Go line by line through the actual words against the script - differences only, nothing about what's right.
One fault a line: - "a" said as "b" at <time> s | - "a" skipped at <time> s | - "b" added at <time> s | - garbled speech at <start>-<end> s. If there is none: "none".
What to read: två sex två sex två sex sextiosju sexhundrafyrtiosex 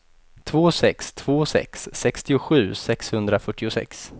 - "två sex" skipped at 1.9 s